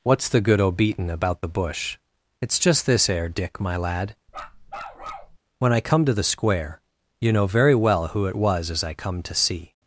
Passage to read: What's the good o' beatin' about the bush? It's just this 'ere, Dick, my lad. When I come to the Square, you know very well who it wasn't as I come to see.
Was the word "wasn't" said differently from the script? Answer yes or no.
yes